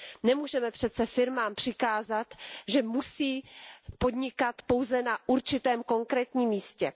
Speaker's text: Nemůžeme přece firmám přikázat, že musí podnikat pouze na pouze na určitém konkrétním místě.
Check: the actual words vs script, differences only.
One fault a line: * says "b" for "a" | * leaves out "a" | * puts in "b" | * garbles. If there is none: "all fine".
* leaves out "pouze na"